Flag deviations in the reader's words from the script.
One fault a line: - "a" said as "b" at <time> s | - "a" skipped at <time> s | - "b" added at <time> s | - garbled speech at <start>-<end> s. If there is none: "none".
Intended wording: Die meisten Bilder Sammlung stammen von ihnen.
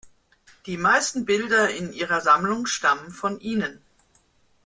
- "in ihrer" added at 1.7 s